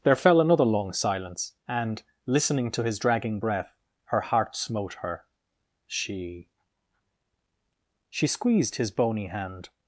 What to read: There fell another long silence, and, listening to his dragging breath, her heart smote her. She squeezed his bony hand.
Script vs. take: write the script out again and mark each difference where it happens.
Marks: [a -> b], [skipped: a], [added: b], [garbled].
There fell another long silence, and, listening to his dragging breath, her heart smote her. She [added: She] squeezed his bony hand.